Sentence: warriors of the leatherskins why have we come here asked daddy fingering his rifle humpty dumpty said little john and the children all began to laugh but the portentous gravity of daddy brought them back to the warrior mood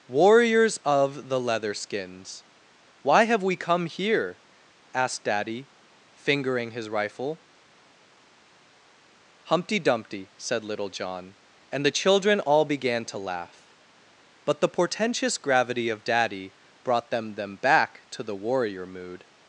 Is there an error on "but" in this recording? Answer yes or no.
no